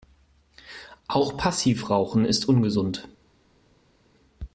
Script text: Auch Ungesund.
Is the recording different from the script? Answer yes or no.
yes